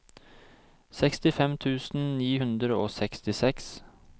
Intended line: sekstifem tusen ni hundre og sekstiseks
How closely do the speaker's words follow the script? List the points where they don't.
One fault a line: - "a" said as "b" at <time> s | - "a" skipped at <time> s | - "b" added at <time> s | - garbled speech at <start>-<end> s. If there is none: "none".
none